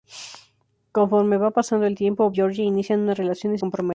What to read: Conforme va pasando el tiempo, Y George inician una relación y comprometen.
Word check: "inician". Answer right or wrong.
right